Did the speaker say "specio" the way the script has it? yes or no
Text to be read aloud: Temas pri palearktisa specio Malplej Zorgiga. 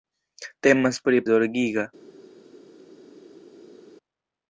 no